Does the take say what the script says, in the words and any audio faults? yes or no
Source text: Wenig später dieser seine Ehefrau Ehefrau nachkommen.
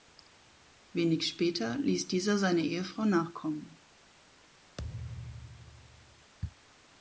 no